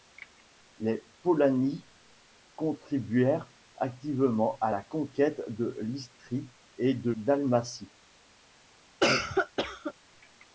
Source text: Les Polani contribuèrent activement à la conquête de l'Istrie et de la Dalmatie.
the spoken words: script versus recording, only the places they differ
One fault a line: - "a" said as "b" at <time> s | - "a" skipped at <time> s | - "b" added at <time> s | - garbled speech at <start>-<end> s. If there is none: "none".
- "la" skipped at 7.1 s